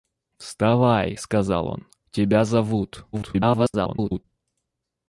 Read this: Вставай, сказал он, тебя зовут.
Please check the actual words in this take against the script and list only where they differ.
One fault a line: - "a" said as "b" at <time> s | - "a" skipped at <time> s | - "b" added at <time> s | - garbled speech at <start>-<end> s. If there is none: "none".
- garbled speech at 3.1-4.2 s